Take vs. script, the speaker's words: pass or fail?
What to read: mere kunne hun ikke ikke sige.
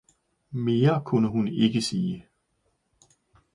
fail